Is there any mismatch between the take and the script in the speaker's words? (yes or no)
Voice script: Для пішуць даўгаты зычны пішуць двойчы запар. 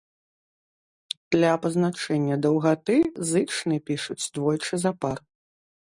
yes